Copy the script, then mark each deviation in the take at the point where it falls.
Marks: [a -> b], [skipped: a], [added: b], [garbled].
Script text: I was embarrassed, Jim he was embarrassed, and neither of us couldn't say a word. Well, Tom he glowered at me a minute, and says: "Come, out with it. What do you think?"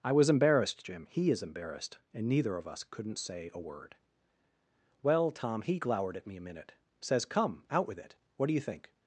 I was embarrassed, Jim he [was -> is] embarrassed, and neither of us couldn't say a word. Well, Tom he glowered at me a minute, [skipped: and] says: "Come, out with it. What do you think?"